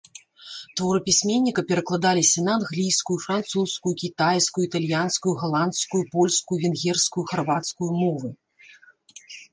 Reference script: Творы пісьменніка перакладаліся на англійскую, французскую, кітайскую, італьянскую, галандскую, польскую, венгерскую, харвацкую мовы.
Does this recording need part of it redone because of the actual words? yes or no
no